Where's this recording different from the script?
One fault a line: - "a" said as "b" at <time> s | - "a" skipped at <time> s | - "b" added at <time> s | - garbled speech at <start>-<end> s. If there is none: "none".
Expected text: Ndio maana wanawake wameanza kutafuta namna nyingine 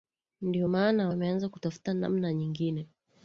- "wanawake" skipped at 1.1 s